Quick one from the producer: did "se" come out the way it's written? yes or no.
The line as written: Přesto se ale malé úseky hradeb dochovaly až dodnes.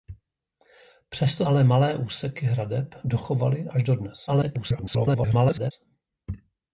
no